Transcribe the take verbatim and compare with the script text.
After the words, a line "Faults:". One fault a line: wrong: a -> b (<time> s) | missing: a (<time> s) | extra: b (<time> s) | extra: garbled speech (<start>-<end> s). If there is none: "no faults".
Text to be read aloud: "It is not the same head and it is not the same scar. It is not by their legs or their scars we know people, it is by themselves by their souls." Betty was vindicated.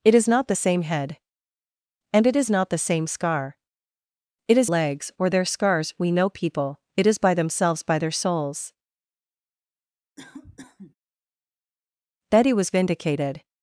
"It is not the same head and it is not the same scar. It is legs or their scars we know people, it is by themselves by their souls." Betty was vindicated.
Faults:
missing: not by their (4.7 s)